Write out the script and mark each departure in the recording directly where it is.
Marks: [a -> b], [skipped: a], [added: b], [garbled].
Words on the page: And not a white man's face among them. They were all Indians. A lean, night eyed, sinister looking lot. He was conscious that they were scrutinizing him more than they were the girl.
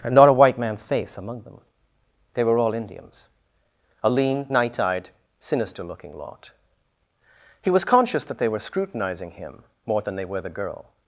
And not a white man's face among them. They were all Indians. A lean, night eyed, sinister looking lot. He was conscious that they were scrutinizing him more than they were the girl.